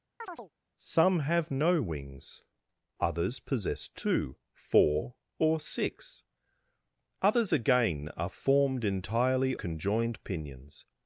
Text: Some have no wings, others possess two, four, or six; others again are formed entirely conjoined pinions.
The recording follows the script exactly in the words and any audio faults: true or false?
false